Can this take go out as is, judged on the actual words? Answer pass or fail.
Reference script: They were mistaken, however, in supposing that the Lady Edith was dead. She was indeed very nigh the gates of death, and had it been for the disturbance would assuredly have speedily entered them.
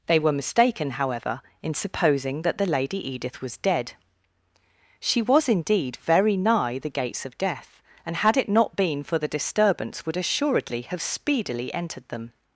fail